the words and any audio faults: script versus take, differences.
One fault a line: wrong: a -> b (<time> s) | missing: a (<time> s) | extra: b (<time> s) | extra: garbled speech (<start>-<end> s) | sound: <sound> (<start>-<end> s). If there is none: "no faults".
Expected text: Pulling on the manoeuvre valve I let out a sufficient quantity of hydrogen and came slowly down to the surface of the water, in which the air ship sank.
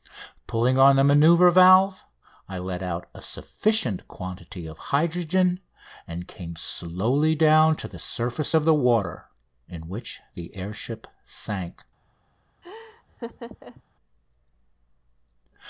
sound: laugh (12.6-13.8 s)